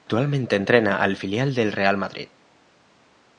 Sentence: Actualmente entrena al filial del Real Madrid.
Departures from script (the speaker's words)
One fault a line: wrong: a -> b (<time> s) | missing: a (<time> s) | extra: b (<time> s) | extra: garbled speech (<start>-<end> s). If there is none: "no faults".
no faults